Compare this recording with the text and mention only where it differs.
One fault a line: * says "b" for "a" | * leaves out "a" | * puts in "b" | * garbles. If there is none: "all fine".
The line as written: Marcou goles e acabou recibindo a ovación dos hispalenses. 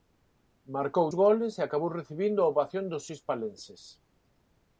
all fine